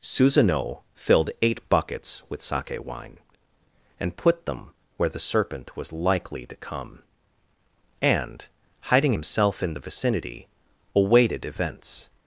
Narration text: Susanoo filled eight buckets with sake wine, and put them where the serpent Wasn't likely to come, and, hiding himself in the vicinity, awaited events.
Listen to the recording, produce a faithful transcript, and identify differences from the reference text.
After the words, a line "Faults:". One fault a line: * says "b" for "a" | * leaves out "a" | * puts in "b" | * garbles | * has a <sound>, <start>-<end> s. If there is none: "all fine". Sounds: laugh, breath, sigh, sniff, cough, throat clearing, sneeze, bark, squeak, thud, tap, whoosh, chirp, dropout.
Susanoo filled eight buckets with sake wine, and put them where the serpent Was likely to come, and, hiding himself in the vicinity, awaited events.
Faults:
* says "Was" for "Wasn't"